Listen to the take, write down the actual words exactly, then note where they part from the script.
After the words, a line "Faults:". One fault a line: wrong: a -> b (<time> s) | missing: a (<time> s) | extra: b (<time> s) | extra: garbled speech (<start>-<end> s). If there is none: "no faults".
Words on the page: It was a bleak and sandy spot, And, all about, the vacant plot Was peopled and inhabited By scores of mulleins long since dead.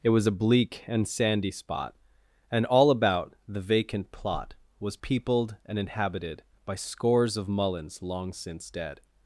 It was a bleak and sandy spot, And, all about, the vacant plot Was peopled and inhabited By scores of mulleins long since dead.
Faults:
no faults